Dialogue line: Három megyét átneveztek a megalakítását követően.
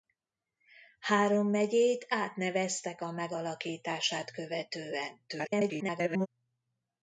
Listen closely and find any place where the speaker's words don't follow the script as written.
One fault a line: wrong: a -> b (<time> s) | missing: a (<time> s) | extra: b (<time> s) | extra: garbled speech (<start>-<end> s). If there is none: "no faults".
extra: garbled speech (5.3-6.3 s)